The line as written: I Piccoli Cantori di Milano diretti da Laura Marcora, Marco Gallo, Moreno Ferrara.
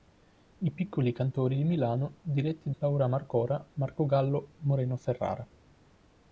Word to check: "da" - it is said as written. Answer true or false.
false